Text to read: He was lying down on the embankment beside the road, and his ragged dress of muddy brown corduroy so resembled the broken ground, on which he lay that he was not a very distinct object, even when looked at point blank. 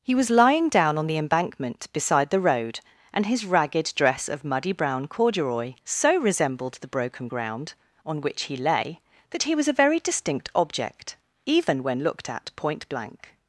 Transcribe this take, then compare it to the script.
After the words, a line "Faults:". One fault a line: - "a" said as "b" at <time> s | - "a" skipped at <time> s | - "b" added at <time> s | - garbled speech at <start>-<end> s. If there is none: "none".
He was lying down on the embankment beside the road, and his ragged dress of muddy brown corduroy so resembled the broken ground, on which he lay that he was a very distinct object, even when looked at point blank.
Faults:
- "not" skipped at 9.7 s